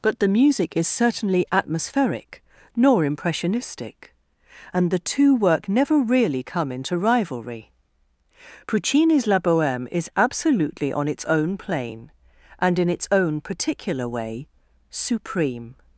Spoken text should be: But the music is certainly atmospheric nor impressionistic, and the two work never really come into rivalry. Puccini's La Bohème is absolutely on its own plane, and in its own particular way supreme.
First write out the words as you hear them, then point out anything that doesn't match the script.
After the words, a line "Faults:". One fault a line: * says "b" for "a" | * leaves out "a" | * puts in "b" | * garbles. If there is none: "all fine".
But the music is certainly atmospheric nor impressionistic, and the two work never really come into rivalry. Puccini's La Bohème is absolutely on its own plane, and in its own particular way supreme.
Faults:
all fine